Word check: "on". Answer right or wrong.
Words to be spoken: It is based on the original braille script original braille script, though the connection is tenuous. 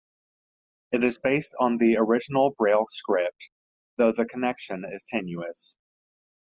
right